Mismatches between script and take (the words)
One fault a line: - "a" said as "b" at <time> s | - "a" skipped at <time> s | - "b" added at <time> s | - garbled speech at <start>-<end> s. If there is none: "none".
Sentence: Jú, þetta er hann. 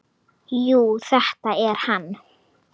none